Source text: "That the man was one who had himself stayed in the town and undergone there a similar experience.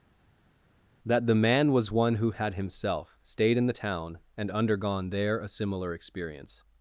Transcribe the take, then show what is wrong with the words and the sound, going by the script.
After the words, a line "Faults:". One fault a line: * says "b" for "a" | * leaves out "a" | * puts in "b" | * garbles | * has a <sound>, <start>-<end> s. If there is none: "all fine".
"That the man was one who had himself stayed in the town and undergone there a similar experience.
Faults:
all fine